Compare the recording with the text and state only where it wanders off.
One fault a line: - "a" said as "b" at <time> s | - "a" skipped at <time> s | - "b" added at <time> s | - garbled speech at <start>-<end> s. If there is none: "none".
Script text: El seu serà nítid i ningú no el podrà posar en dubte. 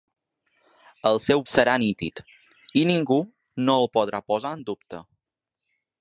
none